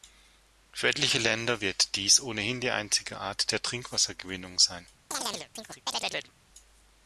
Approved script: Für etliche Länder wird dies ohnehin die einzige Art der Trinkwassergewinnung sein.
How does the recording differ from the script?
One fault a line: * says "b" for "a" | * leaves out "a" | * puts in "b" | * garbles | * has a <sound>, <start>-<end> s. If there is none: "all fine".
* has a chirp, 5.1-6.3 s